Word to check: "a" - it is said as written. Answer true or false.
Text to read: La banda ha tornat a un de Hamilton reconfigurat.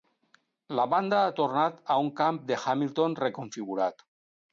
true